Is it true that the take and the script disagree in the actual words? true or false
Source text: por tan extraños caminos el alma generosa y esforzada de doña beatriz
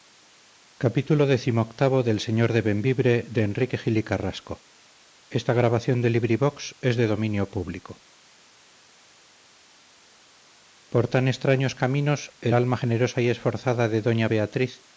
false